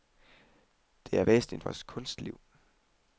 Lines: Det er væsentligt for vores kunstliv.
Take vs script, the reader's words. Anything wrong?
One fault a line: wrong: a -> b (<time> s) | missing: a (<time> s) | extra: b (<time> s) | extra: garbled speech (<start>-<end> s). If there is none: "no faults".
missing: for (1.6 s)